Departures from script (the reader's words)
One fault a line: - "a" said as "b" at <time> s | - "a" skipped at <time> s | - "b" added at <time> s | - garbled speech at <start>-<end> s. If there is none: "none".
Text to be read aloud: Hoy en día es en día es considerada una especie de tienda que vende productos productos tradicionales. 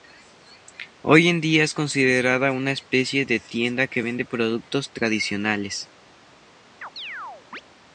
- "en día es" skipped at 1.8 s
- "productos" skipped at 4.9 s